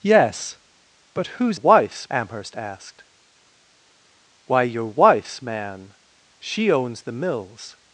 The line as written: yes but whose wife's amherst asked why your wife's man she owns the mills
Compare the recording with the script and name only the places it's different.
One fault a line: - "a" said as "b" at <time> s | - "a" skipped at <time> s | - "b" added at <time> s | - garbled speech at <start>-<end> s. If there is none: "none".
none